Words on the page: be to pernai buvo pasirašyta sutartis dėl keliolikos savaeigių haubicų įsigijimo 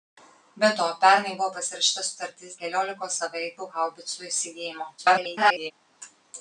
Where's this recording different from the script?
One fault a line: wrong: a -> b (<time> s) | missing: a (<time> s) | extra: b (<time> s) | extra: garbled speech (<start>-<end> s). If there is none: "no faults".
missing: dėl (2.6 s)
extra: garbled speech (5.0-5.7 s)